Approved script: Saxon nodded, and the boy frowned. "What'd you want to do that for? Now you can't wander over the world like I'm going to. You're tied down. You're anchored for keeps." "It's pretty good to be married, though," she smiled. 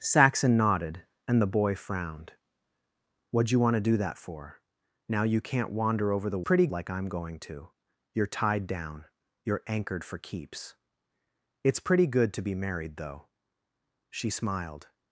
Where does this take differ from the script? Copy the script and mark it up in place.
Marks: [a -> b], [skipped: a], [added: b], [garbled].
Saxon nodded, and the boy frowned. "What'd you want to do that for? Now you can't wander over the [world -> pretty] like I'm going to. You're tied down. You're anchored for keeps." "It's pretty good to be married, though," she smiled.